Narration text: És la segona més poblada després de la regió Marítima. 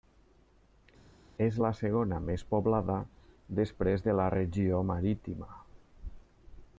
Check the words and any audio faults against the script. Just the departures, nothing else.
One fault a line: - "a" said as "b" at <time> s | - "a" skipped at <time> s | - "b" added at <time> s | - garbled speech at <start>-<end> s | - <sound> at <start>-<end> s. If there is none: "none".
none